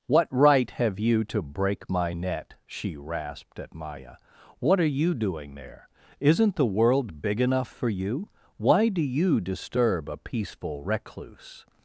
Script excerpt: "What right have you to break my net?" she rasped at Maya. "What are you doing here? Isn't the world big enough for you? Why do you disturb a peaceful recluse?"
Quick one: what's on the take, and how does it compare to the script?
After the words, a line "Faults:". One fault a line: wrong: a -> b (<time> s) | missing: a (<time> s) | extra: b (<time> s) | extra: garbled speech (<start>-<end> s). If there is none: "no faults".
"What right have you to break my net?" she rasped at Maya. "What are you doing there? Isn't the world big enough for you? Why do you disturb a peaceful recluse?"
Faults:
wrong: here -> there (5.5 s)